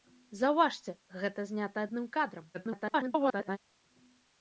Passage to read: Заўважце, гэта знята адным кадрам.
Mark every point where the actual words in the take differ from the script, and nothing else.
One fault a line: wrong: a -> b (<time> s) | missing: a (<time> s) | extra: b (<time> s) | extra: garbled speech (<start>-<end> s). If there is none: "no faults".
extra: garbled speech (2.5-3.6 s)